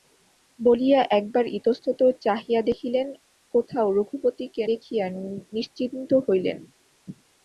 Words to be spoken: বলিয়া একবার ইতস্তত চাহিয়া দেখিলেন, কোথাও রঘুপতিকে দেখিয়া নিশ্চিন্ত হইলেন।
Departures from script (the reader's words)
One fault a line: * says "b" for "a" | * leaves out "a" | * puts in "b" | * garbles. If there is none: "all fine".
all fine